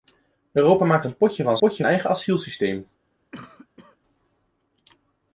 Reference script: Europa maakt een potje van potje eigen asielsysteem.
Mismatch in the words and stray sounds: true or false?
true